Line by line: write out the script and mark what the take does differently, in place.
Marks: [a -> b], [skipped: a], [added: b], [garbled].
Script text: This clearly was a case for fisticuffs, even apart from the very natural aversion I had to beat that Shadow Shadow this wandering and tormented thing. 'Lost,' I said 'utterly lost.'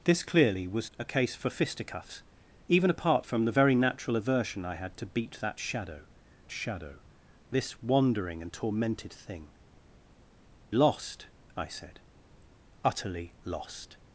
This clearly was a case for fisticuffs, even apart from the very natural aversion I had to beat that Shadow Shadow this wandering and tormented thing. 'Lost,' I said 'utterly lost.'